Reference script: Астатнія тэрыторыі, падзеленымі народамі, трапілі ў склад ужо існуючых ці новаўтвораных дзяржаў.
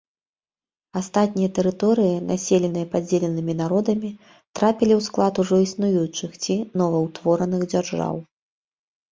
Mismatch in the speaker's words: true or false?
true